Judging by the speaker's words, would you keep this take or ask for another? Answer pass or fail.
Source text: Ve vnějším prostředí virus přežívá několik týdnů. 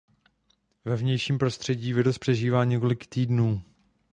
pass